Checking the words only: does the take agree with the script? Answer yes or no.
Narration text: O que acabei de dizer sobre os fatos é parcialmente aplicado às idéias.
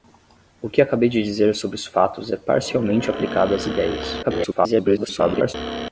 no